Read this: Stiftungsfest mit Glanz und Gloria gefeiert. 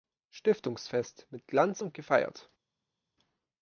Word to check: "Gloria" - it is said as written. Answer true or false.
false